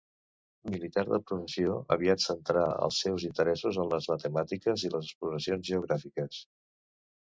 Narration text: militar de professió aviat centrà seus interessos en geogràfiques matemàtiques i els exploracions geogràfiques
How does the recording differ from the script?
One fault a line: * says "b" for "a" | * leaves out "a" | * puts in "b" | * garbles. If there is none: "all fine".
* puts in "els"
* says "les" for "geogràfiques"
* says "les" for "els"